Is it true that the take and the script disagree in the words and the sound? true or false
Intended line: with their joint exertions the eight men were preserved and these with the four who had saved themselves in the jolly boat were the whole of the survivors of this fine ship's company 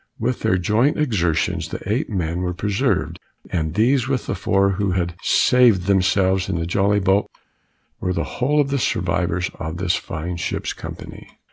false